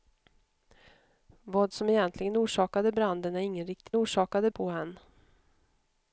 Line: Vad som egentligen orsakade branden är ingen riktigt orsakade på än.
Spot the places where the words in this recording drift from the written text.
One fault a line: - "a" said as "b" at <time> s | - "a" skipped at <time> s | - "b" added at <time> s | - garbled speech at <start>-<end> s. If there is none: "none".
none